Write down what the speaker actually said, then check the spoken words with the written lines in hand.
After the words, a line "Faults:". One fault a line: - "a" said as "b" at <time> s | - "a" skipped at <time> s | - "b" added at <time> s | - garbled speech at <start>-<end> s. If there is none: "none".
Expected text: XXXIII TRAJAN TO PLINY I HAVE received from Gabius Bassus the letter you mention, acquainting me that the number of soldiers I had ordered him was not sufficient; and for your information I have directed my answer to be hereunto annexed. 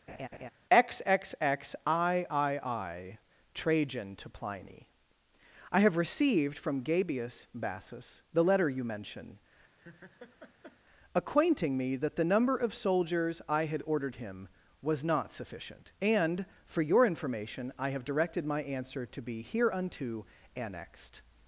XXXIII TRAJAN TO PLINY I HAVE received from Gabius Bassus the letter you mention, acquainting me that the number of soldiers I had ordered him was not sufficient; and for your information I have directed my answer to be hereunto annexed.
Faults:
none